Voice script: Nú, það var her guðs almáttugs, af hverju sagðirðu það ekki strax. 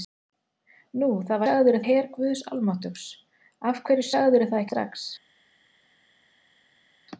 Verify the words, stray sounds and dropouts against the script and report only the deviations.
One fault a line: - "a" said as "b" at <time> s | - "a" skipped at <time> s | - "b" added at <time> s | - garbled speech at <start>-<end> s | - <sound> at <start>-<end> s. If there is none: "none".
- "var" said as "sagðirðu" at 1.5 s
- "ekki" skipped at 4.7 s